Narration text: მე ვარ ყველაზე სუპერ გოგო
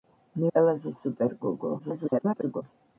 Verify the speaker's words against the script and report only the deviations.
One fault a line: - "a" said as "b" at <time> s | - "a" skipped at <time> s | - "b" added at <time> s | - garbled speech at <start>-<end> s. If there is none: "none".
- "ვარ" skipped at 0.5 s
- garbled speech at 1.8-2.6 s